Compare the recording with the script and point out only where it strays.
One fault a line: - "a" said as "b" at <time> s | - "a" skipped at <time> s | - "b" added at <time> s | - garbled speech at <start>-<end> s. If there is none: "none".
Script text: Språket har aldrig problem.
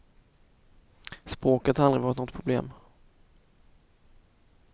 - "varit något" added at 2.0 s